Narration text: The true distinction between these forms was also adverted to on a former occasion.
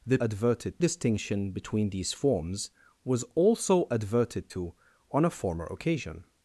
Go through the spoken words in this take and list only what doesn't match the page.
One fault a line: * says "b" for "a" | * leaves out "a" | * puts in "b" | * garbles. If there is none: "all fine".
* says "adverted" for "true"